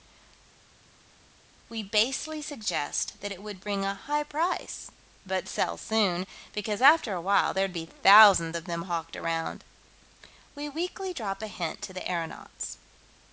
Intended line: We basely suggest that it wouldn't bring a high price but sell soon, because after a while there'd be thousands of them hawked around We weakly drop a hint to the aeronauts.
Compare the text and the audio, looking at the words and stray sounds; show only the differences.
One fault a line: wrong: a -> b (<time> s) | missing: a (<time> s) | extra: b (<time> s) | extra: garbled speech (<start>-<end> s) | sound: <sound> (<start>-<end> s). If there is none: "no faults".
wrong: wouldn't -> would (3.4 s)